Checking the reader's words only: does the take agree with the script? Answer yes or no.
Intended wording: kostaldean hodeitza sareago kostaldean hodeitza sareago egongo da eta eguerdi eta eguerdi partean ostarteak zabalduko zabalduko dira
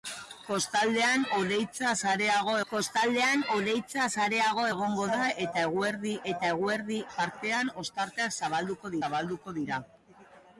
yes